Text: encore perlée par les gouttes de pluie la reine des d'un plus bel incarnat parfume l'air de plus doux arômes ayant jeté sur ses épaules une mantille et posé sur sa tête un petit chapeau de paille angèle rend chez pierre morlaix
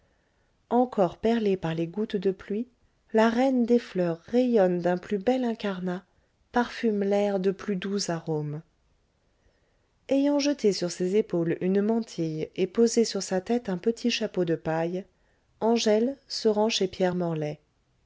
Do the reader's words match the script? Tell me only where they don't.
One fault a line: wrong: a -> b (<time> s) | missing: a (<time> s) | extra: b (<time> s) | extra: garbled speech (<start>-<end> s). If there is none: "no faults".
extra: fleurs rayonne (3.8 s)
extra: se (16.3 s)